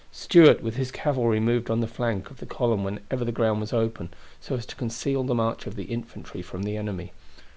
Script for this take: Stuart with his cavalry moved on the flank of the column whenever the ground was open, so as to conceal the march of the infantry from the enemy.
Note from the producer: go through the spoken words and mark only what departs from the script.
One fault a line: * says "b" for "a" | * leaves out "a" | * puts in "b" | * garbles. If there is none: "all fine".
all fine